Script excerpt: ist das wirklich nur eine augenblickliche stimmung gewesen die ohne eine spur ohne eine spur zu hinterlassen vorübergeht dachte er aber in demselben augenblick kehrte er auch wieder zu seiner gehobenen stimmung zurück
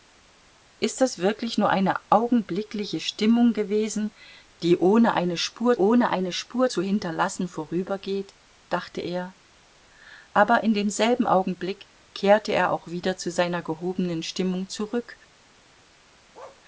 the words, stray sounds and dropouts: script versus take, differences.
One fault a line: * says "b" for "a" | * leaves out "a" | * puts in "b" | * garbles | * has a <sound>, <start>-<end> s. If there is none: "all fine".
* has a bark, 16.3-16.6 s